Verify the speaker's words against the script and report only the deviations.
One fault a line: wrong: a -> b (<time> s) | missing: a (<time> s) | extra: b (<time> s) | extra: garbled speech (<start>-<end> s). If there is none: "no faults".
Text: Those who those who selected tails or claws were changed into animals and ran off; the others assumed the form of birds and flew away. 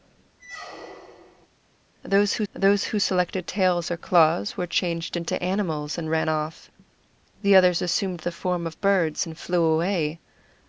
no faults